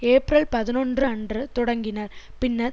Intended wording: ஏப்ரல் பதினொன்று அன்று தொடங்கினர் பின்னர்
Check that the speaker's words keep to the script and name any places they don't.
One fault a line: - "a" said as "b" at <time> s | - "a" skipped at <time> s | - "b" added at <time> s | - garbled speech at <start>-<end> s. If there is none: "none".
none